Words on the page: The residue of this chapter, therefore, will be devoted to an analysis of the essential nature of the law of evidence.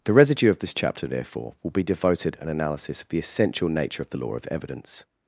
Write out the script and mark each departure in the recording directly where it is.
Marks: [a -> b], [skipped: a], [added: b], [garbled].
The residue of this chapter, therefore, will be devoted [skipped: to] an analysis of the essential nature of the law of evidence.